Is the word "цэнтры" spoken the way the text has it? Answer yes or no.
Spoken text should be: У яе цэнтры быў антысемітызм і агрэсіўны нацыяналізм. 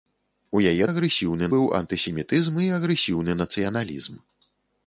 no